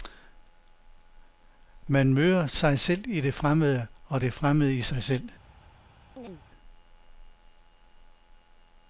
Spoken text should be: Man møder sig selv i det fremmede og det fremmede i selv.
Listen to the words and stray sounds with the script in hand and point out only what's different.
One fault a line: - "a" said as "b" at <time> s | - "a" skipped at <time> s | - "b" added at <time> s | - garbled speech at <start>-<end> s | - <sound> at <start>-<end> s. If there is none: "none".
- "sig" added at 4.8 s
- chirp at 6.2-6.4 s